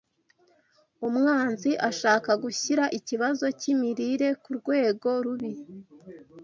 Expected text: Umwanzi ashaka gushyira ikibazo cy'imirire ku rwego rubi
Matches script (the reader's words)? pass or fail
pass